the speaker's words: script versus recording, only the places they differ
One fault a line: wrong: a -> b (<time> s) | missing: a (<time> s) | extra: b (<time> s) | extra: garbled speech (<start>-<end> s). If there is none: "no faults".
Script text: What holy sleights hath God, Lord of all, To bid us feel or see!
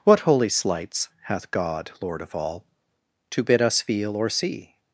no faults